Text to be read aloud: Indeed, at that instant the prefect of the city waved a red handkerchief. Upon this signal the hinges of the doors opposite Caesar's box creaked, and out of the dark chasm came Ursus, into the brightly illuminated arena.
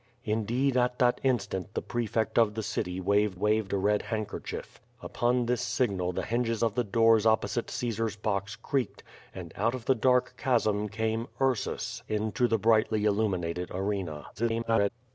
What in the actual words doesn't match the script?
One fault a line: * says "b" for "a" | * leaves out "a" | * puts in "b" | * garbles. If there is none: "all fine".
* puts in "waved"
* garbles